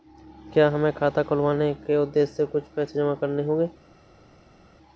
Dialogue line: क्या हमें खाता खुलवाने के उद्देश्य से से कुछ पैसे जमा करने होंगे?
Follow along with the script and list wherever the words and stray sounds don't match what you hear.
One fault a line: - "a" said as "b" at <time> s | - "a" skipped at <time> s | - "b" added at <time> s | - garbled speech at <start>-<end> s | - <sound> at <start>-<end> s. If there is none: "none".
- "से" skipped at 2.5 s